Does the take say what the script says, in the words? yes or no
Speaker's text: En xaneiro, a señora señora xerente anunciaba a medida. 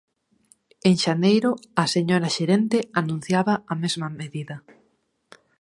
no